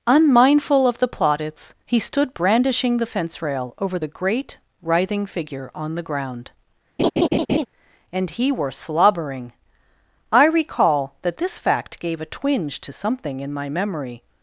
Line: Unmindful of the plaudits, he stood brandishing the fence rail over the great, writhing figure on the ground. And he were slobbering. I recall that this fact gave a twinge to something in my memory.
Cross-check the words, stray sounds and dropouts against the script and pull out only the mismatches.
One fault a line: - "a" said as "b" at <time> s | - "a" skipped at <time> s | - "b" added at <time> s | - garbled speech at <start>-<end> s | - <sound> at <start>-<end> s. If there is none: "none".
- laugh at 7.0-7.7 s